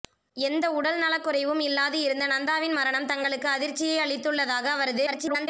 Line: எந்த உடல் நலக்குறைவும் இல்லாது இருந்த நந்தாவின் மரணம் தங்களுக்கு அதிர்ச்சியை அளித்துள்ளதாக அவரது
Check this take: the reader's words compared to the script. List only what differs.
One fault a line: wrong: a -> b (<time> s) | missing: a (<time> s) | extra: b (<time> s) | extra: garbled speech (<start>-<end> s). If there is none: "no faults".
extra: garbled speech (5.1-5.5 s)